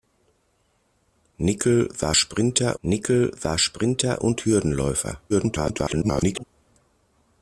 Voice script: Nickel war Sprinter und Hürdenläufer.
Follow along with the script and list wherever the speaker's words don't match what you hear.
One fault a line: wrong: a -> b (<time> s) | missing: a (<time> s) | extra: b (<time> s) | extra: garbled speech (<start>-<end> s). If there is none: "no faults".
extra: nickel war Sprinter (2.8 s)
extra: garbled speech (5.3-6.4 s)